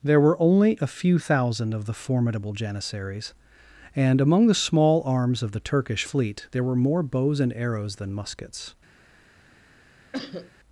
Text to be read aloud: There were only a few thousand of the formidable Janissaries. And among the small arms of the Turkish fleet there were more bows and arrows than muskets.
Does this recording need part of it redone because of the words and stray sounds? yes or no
yes